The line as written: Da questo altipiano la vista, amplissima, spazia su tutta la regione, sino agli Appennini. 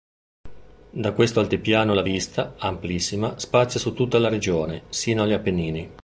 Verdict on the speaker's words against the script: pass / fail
pass